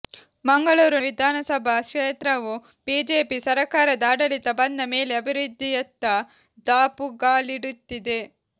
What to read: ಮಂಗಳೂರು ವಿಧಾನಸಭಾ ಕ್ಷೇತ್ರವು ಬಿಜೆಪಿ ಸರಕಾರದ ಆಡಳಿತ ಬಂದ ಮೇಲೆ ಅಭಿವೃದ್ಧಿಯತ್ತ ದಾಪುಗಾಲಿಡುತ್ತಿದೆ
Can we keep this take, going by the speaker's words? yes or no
yes